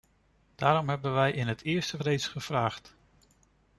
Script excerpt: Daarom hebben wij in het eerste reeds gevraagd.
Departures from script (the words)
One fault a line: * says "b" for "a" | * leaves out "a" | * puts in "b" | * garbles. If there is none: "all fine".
all fine